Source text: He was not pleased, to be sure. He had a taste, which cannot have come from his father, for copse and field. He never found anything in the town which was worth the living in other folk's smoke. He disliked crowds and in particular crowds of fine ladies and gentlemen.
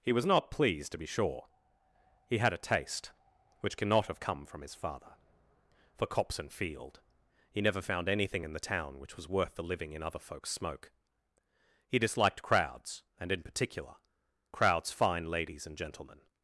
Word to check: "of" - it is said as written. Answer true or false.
false